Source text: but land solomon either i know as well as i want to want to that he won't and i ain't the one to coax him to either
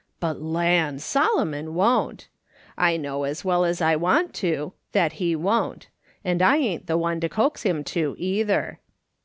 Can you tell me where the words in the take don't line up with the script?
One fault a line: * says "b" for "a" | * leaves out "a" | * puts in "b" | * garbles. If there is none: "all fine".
* says "won't" for "either"
* leaves out "want to"